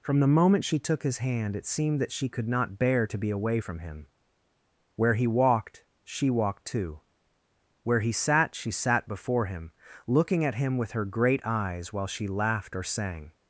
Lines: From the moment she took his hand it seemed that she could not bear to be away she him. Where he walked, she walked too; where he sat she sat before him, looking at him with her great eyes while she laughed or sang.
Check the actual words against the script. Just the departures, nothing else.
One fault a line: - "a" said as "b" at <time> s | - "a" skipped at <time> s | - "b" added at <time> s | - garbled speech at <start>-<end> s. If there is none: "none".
- "she" said as "from" at 3.6 s